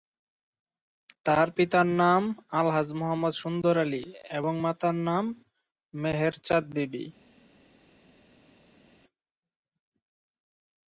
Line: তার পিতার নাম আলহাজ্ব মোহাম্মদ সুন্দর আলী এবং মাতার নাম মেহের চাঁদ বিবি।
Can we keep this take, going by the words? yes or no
yes